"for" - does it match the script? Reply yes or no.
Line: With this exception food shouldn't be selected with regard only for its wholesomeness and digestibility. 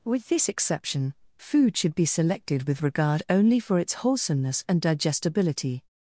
yes